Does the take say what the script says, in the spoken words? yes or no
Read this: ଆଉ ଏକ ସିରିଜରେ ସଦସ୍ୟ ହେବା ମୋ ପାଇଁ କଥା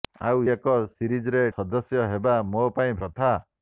yes